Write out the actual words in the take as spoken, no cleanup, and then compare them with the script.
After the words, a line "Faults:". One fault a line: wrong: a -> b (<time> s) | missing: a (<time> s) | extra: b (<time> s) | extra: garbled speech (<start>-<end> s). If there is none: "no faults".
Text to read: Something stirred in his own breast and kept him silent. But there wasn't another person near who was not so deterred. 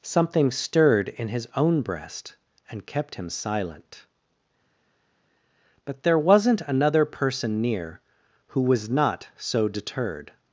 Something stirred in his own breast and kept him silent. But there wasn't another person near who was not so deterred.
Faults:
no faults